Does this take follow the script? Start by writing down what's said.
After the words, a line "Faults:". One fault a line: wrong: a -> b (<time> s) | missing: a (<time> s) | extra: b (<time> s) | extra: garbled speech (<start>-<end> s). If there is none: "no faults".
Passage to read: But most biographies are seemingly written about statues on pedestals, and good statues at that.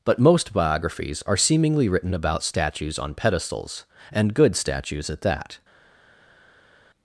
But most biographies are seemingly written about statues on pedestals, and good statues at that.
Faults:
no faults